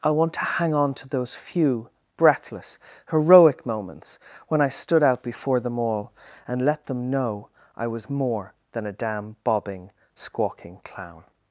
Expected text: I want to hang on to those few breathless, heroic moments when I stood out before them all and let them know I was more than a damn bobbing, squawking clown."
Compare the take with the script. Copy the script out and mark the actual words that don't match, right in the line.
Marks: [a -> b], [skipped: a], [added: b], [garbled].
I want to hang on to those few breathless, heroic moments when I stood out before them all and let them know I was more than a damn bobbing, squawking clown."